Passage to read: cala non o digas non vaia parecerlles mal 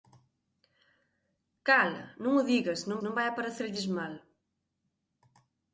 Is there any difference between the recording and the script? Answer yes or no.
yes